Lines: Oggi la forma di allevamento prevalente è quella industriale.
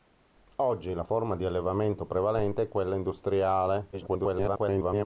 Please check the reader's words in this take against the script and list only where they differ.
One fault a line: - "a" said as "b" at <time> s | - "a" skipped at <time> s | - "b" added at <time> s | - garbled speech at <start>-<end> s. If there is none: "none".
- garbled speech at 3.9-5.1 s